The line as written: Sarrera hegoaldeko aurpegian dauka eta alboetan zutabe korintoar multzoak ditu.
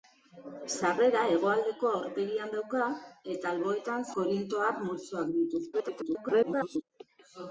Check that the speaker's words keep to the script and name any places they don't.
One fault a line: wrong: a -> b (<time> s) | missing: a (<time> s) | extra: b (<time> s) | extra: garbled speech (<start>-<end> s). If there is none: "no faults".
missing: zutabe (4.1 s)
extra: garbled speech (5.7-6.8 s)